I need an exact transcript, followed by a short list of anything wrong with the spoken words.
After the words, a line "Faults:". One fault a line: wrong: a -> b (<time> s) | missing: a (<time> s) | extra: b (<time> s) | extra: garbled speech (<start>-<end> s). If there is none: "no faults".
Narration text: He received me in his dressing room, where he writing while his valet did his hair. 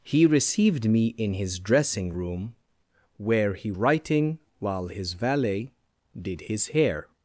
He received me in his dressing room, where he writing while his valet did his hair.
Faults:
no faults